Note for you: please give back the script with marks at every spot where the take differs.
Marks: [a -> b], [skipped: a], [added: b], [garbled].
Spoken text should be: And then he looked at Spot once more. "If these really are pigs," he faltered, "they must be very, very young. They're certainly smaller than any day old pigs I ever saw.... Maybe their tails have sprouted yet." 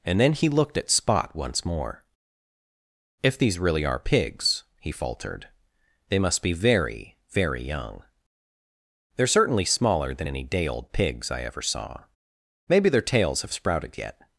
And then he looked at Spot once more. "If these really are pigs," he faltered, "they must be very, very young. They're certainly smaller than any day old pigs I ever saw.... Maybe their tails have sprouted yet."